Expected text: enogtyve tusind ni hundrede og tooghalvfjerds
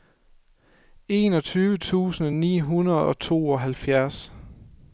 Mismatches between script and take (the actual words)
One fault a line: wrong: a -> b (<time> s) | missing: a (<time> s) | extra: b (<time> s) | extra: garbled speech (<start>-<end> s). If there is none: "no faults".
no faults